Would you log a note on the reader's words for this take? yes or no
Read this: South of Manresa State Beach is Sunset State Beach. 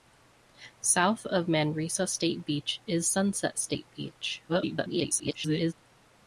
yes